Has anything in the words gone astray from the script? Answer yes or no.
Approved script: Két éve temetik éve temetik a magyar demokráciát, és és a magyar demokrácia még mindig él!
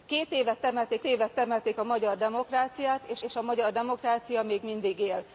no